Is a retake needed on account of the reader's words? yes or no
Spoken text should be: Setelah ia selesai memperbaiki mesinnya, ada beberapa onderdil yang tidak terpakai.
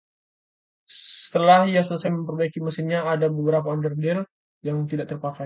no